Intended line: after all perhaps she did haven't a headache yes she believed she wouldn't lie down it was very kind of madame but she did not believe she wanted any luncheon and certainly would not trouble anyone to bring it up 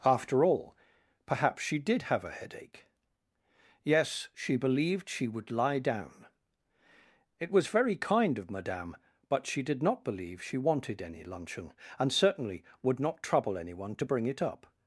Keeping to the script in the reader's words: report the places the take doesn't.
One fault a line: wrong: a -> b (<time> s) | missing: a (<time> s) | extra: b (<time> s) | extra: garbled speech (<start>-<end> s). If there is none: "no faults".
wrong: haven't -> have (2.0 s)
wrong: wouldn't -> would (5.3 s)